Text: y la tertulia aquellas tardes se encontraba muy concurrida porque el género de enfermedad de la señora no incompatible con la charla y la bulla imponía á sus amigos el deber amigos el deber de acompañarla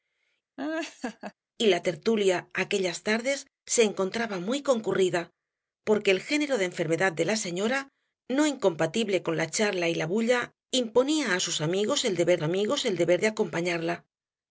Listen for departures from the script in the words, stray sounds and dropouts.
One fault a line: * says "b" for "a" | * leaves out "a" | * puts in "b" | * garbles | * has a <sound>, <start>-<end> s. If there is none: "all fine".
* has a laugh, 0.6-1.3 s